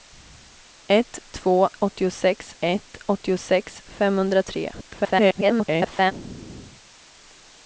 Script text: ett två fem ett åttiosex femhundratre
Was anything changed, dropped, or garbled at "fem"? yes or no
yes